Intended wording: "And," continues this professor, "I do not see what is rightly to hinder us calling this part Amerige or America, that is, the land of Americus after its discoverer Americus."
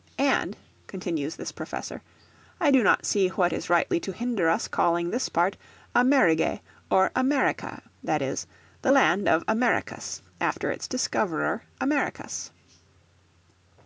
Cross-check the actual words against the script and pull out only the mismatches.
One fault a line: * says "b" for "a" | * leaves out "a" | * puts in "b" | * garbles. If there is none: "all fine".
all fine